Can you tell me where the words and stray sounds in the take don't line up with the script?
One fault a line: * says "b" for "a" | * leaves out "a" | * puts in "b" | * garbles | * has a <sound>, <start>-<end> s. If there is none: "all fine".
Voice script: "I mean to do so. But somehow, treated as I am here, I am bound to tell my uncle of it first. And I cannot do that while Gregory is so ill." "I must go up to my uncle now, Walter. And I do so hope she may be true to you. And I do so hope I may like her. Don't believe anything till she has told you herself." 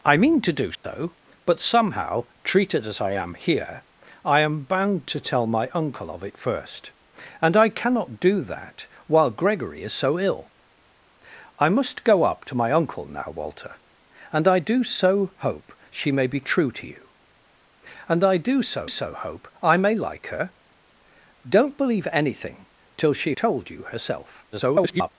* has a dropout, 0.7-0.8 s
* puts in "so"
* leaves out "has"
* garbles